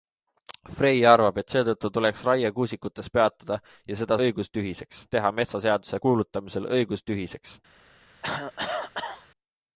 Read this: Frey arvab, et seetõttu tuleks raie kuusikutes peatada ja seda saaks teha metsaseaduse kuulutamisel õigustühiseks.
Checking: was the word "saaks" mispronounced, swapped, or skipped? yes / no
yes